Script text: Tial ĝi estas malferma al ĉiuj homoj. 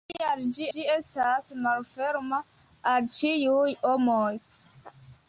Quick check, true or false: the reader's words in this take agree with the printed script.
false